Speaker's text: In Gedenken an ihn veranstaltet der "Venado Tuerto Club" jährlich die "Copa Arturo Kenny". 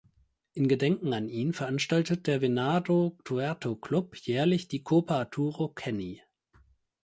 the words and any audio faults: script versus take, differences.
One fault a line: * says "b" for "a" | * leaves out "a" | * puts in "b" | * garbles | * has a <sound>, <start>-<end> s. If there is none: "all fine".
all fine